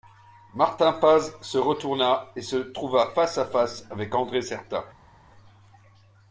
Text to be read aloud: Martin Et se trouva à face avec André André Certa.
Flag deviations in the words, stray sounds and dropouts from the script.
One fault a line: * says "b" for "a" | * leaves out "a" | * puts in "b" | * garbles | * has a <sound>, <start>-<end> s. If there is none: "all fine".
* puts in "Paz se retourna"
* puts in "face"
* leaves out "André"